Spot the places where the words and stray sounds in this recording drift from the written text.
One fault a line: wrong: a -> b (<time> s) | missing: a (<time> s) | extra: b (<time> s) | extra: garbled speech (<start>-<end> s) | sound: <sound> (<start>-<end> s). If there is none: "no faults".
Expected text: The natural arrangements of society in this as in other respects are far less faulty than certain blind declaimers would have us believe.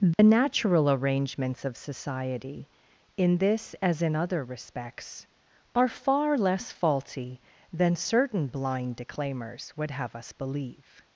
sound: dropout (0.1-0.2 s)